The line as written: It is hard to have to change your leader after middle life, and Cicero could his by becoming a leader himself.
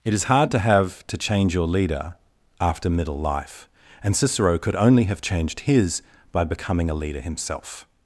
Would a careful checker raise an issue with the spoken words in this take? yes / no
yes